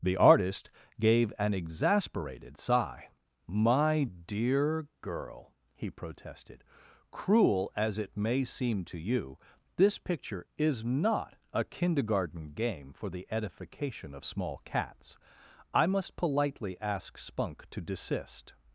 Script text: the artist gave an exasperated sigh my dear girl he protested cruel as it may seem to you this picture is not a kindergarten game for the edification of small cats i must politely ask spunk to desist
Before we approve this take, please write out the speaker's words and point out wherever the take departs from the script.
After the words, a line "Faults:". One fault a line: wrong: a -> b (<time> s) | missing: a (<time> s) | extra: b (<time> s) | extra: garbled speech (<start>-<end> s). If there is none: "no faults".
the artist gave an exasperated sigh my dear girl he protested cruel as it may seem to you this picture is not a kindergarten game for the edification of small cats i must politely ask spunk to desist
Faults:
no faults